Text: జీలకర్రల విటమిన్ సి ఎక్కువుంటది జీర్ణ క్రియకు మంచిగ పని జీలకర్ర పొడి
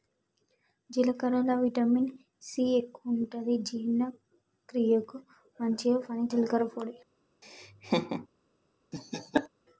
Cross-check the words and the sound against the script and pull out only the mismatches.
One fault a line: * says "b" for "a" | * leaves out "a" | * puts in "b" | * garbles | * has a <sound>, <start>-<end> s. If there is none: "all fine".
* has a laugh, 7.4-8.3 s
* has a laugh, 8.9-9.5 s